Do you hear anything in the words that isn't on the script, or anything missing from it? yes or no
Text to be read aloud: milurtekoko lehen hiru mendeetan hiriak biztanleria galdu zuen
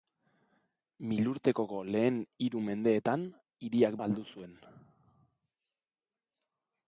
yes